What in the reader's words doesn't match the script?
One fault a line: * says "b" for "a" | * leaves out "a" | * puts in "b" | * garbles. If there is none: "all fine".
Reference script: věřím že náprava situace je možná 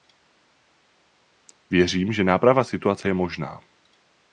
all fine